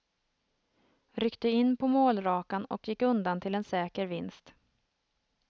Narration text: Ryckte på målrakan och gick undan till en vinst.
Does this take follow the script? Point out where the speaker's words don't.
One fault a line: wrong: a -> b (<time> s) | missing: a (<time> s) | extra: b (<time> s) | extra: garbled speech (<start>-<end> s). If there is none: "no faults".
extra: in (1.5 s)
extra: säker (3.6 s)